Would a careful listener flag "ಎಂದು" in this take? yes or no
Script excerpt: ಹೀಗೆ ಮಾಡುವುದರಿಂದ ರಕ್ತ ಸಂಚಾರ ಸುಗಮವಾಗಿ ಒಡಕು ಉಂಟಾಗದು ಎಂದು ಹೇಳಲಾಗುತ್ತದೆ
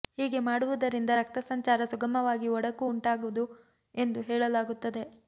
no